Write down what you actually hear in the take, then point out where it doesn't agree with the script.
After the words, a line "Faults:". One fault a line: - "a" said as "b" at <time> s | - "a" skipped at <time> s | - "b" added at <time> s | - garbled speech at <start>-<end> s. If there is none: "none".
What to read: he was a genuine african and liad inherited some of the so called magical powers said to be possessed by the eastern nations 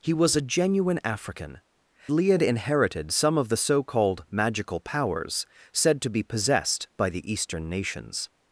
he was a genuine african liad inherited some of the so called magical powers said to be possessed by the eastern nations
Faults:
- "and" skipped at 1.6 s